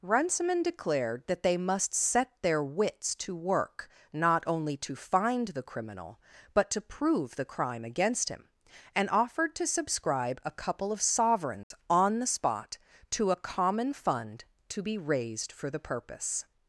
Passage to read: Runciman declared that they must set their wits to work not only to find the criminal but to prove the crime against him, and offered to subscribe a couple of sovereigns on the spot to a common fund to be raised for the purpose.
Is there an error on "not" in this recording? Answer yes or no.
no